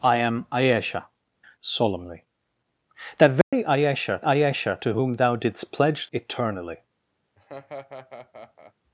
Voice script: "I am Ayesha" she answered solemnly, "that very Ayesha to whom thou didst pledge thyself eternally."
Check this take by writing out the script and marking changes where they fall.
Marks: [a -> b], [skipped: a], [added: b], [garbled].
"I am Ayesha" [skipped: she answered] solemnly, "that very Ayesha [added: Ayesha] to whom thou didst pledge [skipped: thyself] eternally."